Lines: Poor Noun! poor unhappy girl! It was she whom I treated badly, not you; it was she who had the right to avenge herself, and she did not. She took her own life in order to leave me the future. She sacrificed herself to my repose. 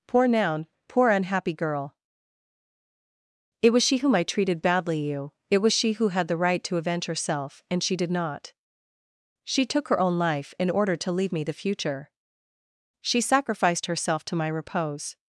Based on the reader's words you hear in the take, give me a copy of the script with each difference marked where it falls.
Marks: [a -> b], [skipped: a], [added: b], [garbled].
Poor Noun! poor unhappy girl! It was she whom I treated badly, [skipped: not] you; it was she who had the right to avenge herself, and she did not. She took her own life in order to leave me the future. She sacrificed herself to my repose.